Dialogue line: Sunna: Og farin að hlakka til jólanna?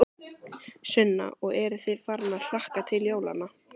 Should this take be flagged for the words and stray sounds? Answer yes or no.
yes